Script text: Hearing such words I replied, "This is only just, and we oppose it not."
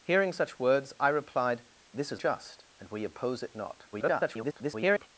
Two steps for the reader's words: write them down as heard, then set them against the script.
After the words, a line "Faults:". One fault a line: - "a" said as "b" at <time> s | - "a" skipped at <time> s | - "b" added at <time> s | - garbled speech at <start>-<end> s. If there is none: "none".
Hearing such words I replied, "This is just, and we oppose it not." [garbled]
Faults:
- "only" skipped at 2.2 s
- garbled speech at 3.9-5.1 s